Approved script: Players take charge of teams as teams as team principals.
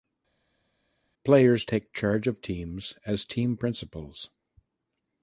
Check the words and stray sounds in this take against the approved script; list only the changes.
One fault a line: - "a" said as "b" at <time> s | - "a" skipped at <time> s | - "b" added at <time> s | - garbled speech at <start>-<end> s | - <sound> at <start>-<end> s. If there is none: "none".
- "teams as" skipped at 3.2 s